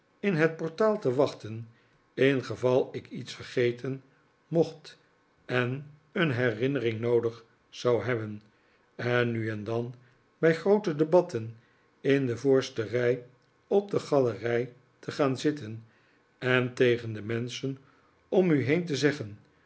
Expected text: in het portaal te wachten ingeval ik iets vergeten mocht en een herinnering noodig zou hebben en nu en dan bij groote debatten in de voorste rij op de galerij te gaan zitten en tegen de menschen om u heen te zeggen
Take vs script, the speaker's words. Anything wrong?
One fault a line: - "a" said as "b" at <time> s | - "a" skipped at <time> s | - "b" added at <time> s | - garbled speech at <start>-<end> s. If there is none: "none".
none